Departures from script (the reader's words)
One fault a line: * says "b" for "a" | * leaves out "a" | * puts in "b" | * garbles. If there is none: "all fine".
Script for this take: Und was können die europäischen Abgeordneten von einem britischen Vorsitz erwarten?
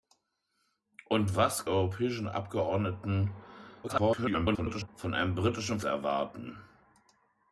* leaves out "können die"
* garbles
* leaves out "Vorsitz"